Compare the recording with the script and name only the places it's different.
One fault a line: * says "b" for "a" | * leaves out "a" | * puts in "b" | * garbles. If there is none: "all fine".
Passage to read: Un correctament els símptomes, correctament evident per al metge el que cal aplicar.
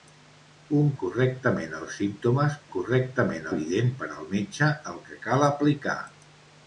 all fine